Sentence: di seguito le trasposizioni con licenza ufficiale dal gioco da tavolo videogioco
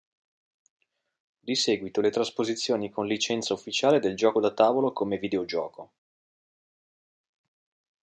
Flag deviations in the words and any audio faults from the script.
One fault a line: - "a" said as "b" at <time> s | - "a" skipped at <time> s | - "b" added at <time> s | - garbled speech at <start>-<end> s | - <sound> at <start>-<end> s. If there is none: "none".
- "dal" said as "del" at 4.0 s
- "come" added at 4.9 s